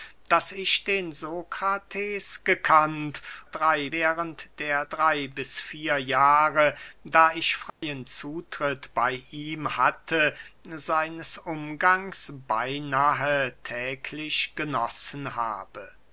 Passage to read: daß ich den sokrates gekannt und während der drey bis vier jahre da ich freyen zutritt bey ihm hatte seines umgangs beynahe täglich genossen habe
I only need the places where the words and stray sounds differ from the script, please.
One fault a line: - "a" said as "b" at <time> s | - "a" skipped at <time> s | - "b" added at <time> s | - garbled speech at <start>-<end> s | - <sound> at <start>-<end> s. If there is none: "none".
- "und" said as "drey" at 3.5 s
- dropout at 7.7-7.8 s